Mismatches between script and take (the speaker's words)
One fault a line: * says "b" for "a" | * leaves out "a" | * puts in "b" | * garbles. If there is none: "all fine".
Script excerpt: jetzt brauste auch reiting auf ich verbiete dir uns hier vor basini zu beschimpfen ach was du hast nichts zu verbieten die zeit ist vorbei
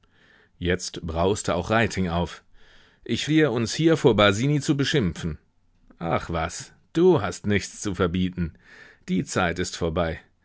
* leaves out "verbiete"